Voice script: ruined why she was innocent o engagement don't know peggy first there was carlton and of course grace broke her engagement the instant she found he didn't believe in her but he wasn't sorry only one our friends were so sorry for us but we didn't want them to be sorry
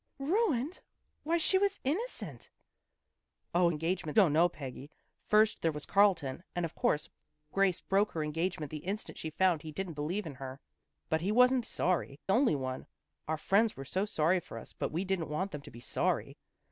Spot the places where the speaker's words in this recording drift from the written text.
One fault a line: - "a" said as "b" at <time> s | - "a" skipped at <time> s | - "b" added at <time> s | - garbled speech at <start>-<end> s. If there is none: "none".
none